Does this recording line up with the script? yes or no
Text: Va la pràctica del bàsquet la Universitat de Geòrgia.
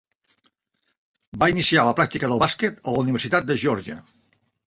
no